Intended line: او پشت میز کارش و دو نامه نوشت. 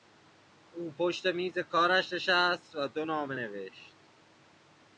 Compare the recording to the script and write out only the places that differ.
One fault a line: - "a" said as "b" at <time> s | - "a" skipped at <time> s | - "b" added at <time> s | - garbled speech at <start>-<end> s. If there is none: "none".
- "نشست" added at 2.1 s